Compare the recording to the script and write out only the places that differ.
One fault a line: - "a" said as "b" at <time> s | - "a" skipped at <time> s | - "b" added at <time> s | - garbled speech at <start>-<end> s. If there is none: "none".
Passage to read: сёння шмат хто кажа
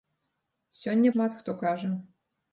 none